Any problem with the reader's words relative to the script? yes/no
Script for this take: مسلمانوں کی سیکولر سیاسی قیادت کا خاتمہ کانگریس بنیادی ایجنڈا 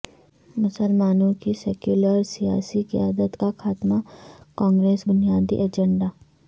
no